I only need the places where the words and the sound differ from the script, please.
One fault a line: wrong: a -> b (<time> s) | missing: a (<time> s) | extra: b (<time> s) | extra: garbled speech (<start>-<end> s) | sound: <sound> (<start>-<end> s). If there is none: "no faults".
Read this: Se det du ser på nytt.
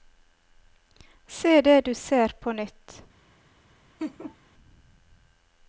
sound: laugh (4.0-4.4 s)